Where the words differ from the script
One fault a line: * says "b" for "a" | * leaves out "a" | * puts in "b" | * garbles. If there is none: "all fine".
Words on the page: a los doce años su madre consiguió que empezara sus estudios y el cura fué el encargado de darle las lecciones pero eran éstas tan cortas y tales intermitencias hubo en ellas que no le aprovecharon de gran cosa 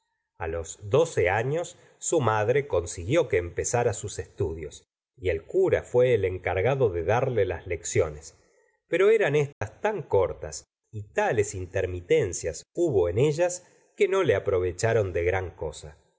all fine